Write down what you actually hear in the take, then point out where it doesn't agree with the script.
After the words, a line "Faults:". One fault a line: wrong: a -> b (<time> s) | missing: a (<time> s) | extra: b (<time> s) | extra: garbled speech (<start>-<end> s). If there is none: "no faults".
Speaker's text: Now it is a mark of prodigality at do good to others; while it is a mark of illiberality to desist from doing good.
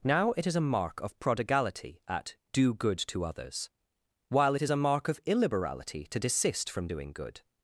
Now it is a mark of prodigality at do good to others; while it is a mark of illiberality to desist from doing good.
Faults:
no faults